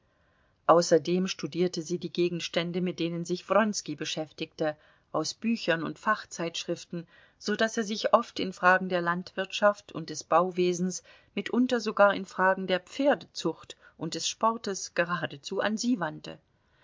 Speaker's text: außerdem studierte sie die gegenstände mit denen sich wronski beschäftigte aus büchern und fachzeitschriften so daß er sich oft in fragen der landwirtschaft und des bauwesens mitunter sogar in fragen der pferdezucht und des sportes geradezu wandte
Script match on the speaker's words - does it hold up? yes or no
no